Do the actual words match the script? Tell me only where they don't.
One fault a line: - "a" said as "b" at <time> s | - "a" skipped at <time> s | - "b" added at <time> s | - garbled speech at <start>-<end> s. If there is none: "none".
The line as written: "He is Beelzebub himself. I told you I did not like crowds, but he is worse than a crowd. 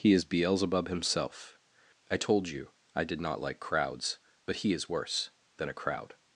none